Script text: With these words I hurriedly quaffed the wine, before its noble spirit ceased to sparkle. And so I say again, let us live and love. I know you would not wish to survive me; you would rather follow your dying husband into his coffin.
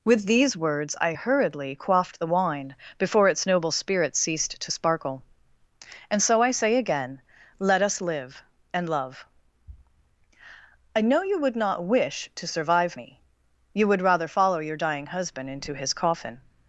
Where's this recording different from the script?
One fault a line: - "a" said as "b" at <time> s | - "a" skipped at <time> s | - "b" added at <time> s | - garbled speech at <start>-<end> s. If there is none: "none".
none